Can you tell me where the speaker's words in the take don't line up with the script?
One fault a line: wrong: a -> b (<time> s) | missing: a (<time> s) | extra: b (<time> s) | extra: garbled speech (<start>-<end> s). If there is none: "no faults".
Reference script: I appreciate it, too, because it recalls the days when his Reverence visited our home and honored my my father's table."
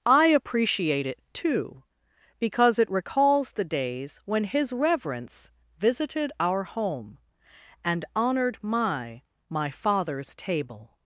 no faults